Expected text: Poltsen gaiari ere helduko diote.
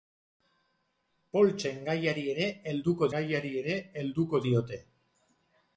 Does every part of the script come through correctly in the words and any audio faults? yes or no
no